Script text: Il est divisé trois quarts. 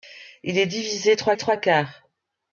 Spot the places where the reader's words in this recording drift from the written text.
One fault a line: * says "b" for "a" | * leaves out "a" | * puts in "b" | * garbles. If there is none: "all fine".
* puts in "trois"